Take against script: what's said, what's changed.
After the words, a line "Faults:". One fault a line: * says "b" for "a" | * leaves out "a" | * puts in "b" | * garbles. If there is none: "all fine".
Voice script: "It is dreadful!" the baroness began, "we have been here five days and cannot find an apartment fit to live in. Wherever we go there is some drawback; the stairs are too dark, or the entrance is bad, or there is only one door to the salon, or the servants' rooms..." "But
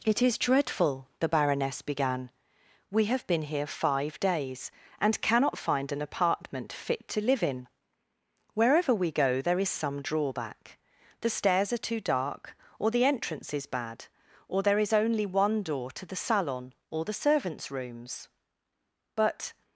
"It is dreadful!" the baroness began, "we have been here five days and cannot find an apartment fit to live in. Wherever we go there is some drawback; the stairs are too dark, or the entrance is bad, or there is only one door to the salon, or the servants' rooms..." "But
Faults:
all fine